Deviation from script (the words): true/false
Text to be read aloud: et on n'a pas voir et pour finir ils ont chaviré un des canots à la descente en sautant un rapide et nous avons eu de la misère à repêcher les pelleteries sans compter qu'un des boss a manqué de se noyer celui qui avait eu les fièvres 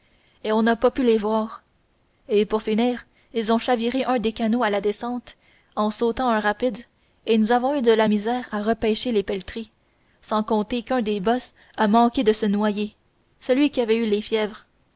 true